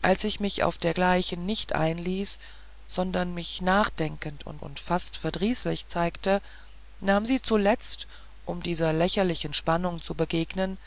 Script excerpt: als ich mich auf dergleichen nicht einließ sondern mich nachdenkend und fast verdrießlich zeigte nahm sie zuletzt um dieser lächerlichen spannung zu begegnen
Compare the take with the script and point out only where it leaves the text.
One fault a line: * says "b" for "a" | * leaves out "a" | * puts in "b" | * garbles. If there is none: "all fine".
* puts in "und"